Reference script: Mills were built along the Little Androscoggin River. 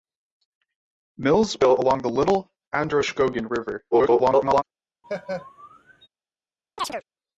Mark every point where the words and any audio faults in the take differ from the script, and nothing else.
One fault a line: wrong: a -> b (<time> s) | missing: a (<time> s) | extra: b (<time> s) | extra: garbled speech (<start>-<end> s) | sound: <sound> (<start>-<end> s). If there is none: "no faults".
missing: were (1.6 s)
extra: garbled speech (3.9-4.6 s)
sound: laugh (5.0-6.1 s)
sound: chirp (6.8-7.0 s)